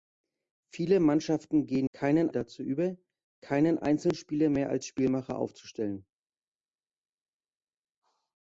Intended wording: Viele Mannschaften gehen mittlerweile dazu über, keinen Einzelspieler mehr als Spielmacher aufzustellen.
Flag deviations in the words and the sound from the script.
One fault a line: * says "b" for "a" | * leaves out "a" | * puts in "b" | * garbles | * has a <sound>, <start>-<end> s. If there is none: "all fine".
* says "keinen" for "mittlerweile"